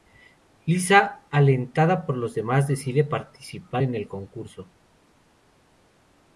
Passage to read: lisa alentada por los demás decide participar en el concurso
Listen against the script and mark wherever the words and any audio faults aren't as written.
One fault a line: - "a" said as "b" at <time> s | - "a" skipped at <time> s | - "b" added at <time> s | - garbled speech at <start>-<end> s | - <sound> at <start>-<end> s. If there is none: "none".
none